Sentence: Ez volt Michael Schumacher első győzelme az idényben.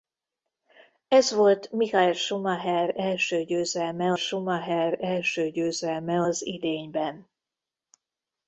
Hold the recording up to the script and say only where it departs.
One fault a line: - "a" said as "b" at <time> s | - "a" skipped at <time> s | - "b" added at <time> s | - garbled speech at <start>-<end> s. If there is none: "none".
- "Schumacher első győzelme" added at 4.1 s